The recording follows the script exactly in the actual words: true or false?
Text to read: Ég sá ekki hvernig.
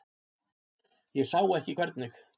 true